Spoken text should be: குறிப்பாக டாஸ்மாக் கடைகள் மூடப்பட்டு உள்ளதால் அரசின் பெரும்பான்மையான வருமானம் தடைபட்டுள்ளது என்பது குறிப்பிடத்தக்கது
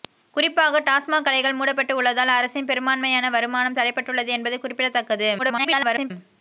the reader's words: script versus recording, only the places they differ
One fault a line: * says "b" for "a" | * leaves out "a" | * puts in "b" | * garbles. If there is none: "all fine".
* garbles